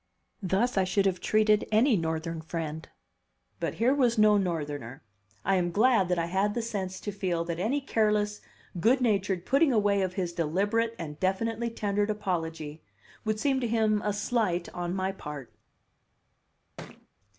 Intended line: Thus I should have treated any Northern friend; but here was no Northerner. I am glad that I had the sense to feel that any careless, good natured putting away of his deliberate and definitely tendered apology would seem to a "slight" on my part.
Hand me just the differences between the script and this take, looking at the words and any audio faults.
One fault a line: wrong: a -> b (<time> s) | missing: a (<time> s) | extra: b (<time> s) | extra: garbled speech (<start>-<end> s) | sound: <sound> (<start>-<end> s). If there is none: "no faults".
extra: him (13.7 s)
sound: thud (16.8-17.1 s)